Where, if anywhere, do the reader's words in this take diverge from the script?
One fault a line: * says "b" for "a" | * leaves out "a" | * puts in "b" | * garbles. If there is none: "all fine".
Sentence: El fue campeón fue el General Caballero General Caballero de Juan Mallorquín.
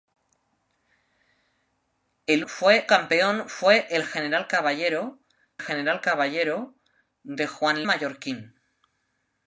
all fine